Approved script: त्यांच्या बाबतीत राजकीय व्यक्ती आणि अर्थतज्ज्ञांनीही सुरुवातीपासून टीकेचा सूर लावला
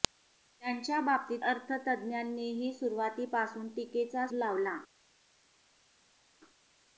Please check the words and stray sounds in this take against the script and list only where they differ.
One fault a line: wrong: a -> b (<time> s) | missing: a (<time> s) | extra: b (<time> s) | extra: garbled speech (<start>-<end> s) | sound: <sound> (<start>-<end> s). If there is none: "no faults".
missing: राजकीय व्यक्ती आणि (1.4 s)
missing: सूर (4.3 s)